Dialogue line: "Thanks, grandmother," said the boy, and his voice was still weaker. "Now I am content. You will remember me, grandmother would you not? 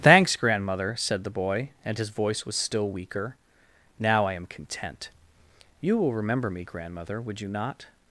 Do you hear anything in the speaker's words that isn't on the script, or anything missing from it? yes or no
no